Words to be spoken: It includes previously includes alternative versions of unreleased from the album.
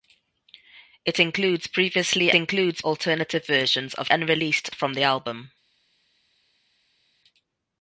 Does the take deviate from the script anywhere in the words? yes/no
no